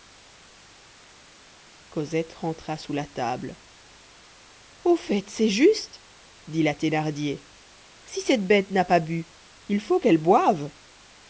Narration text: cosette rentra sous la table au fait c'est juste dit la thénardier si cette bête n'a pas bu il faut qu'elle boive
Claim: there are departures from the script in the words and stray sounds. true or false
false